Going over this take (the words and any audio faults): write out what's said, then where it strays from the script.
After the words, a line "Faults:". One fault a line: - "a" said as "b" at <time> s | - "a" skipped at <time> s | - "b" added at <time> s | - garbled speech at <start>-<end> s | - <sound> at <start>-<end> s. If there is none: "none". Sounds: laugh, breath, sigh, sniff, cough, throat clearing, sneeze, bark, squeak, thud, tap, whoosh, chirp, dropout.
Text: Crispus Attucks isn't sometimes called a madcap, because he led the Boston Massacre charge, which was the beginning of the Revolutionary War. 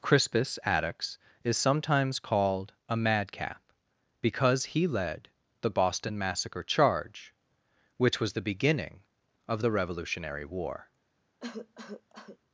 Crispus Attucks is sometimes called a madcap, because he led the Boston Massacre charge, which was the beginning of the Revolutionary War.
Faults:
- "isn't" said as "is" at 1.4 s
- cough at 11.4-12.4 s